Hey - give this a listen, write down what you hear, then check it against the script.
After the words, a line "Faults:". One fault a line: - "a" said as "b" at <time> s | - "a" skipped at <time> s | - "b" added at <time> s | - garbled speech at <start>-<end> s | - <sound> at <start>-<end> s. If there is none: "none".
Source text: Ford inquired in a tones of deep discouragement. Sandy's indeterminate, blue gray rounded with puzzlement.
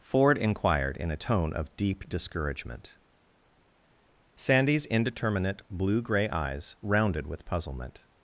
Ford inquired in a tone of deep discouragement. Sandy's indeterminate, blue gray eyes rounded with puzzlement.
Faults:
- "tones" said as "tone" at 1.2 s
- "eyes" added at 6.3 s